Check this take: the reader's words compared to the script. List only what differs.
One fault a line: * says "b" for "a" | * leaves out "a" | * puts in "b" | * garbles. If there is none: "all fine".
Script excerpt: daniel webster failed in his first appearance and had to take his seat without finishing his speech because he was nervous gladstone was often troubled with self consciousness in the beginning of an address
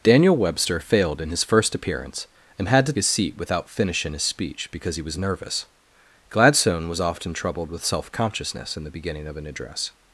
* leaves out "take"